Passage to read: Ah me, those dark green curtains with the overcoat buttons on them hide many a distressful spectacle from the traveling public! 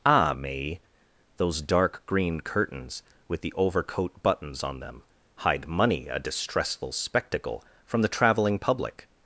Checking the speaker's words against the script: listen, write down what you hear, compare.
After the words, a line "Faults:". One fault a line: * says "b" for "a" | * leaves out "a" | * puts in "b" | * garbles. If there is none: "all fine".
Ah me, those dark green curtains with the overcoat buttons on them hide money a distressful spectacle from the traveling public!
Faults:
* says "money" for "many"